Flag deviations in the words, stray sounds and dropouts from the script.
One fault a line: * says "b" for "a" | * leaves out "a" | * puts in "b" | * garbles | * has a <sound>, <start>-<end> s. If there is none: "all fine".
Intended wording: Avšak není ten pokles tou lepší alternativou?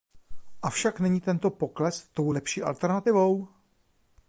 * says "tento" for "ten"